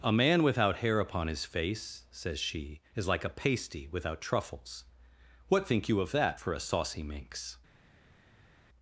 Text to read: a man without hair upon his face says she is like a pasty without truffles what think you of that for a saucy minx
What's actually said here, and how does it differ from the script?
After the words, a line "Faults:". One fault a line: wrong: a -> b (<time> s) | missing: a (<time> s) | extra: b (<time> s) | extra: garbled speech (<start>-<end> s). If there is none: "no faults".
a man without hair upon his face says she is like a pasty without truffles what think you of that for a saucy minx
Faults:
no faults